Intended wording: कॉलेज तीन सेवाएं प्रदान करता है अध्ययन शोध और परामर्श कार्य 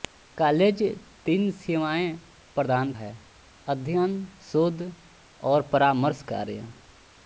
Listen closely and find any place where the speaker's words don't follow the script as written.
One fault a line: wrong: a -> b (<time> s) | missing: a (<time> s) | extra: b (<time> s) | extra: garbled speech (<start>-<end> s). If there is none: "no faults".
missing: करता (2.9 s)